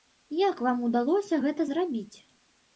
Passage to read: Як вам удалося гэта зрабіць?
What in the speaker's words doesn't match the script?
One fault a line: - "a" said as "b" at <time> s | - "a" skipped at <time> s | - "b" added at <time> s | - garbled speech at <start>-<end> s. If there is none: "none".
none